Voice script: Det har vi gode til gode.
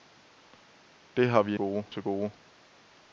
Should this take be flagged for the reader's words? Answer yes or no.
no